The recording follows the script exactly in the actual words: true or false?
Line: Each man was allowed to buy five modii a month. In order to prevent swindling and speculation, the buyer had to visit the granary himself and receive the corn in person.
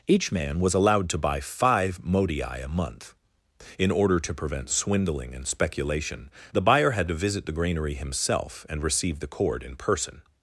false